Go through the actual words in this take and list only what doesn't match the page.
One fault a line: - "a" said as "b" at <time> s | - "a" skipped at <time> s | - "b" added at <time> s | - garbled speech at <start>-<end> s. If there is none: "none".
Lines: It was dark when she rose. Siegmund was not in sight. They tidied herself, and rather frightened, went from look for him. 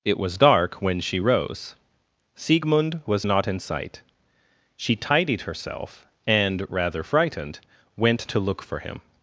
- "They" said as "She" at 4.8 s
- "from" said as "to" at 8.3 s